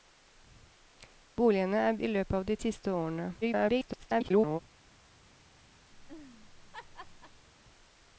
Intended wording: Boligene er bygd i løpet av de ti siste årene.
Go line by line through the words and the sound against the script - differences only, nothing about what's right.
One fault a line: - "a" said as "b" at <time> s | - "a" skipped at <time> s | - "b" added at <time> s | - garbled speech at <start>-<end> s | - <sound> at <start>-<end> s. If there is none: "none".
- "bygd" skipped at 2.0 s
- "ti" skipped at 2.6 s
- garbled speech at 3.4-4.6 s
- laugh at 5.9-7.5 s